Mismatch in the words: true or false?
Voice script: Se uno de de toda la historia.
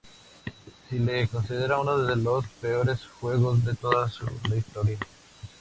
true